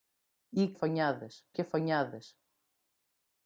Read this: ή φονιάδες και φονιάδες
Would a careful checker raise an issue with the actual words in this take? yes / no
no